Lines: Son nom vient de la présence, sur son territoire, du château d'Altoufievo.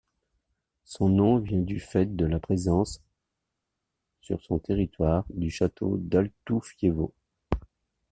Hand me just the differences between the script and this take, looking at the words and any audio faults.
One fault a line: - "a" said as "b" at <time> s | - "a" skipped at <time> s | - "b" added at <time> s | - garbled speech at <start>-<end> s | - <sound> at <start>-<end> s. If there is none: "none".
- "du fait" added at 1.6 s